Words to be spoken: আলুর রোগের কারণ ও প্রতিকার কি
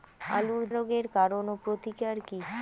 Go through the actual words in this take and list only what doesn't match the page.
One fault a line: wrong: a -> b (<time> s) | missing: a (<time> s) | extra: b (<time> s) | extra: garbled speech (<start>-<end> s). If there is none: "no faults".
no faults